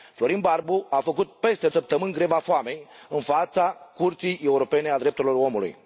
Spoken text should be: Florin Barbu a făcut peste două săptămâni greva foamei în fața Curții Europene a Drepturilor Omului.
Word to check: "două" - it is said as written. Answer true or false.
false